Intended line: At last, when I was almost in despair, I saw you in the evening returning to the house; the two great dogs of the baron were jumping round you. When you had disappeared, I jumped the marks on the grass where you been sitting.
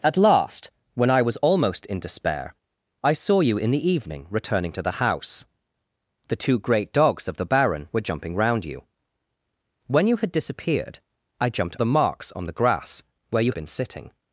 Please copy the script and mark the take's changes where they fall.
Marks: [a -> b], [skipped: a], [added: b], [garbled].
At last, when I was almost in despair, I saw you in the evening returning to the house; the two great dogs of the baron were jumping round you. When you had disappeared, I jumped the marks on the grass where you been sitting.